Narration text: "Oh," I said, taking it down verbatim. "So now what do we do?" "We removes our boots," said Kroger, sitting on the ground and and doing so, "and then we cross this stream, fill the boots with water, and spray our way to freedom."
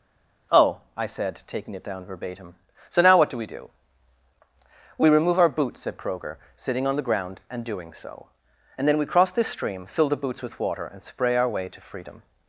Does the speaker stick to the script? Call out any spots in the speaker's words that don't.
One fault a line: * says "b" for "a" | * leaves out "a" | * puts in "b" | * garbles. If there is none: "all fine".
* says "remove" for "removes"
* leaves out "and"